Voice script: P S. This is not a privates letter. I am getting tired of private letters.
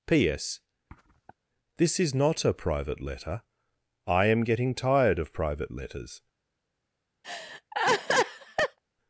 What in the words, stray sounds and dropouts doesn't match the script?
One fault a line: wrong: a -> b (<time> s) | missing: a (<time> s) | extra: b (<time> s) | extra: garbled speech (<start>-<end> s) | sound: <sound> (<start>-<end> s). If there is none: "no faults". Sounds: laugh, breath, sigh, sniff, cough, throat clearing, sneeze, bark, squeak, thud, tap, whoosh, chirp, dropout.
sound: sniff (0.9-1.3 s)
wrong: privates -> private (2.5 s)
sound: laugh (7.2-8.8 s)